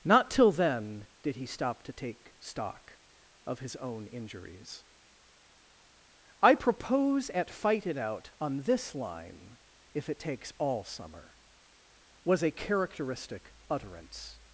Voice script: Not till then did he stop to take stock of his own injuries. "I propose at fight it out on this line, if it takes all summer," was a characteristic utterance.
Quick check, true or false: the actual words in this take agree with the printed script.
true